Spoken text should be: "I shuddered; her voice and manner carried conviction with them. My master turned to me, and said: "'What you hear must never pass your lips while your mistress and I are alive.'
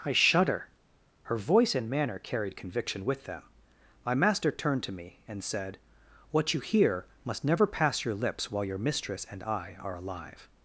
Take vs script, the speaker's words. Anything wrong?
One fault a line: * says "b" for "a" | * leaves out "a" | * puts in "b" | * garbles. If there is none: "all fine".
* says "shudder" for "shuddered"